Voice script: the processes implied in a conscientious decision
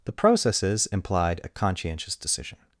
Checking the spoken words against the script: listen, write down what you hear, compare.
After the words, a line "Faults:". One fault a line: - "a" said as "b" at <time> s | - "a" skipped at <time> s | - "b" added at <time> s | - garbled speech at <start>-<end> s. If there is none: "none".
the processes implied a conscientious decision
Faults:
- "in" skipped at 1.4 s